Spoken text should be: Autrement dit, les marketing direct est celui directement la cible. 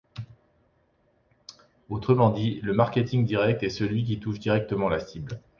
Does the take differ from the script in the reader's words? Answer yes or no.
yes